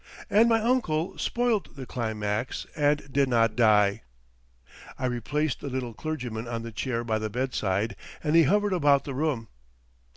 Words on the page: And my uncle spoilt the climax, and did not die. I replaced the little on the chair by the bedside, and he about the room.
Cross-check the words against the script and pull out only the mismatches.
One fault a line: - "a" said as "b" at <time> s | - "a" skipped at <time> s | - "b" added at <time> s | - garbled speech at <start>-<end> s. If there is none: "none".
- "clergyman" added at 5.9 s
- "hovered" added at 8.4 s